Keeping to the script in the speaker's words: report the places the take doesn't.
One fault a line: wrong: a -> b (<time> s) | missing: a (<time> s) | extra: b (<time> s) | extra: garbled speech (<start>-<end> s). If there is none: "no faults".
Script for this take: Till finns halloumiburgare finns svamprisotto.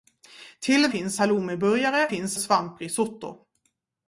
no faults